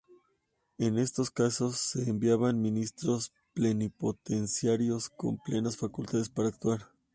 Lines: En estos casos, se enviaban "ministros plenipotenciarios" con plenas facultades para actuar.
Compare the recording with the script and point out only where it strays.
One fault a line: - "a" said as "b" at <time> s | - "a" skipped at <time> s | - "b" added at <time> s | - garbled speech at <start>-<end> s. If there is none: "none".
none